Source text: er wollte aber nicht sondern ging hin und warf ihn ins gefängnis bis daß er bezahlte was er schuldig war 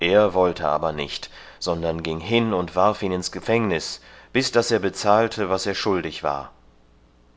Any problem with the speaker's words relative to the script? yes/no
no